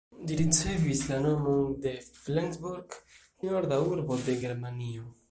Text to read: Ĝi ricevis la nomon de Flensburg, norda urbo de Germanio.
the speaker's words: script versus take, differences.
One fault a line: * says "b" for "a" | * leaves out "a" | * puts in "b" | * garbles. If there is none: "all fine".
all fine